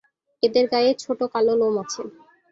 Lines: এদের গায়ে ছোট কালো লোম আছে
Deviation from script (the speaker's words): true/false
false